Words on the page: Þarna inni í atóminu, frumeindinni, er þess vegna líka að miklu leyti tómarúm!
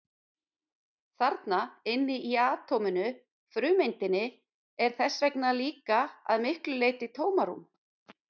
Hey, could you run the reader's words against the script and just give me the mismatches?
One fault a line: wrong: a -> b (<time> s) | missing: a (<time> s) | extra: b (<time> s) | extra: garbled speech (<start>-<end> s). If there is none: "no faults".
no faults